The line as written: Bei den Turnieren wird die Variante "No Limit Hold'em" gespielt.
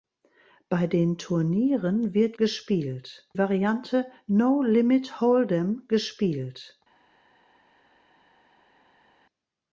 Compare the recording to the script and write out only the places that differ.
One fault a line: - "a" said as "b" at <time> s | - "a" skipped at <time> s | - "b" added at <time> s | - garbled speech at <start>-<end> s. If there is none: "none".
- "die" said as "gespielt" at 2.4 s